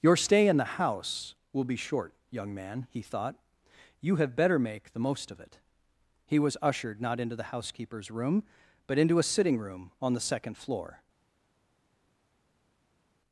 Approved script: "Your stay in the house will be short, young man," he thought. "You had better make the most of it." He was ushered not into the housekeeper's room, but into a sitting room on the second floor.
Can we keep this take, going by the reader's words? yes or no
no